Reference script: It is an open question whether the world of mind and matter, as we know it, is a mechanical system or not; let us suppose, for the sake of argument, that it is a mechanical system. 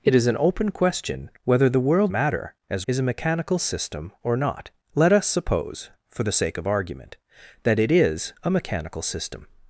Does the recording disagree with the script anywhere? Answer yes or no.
yes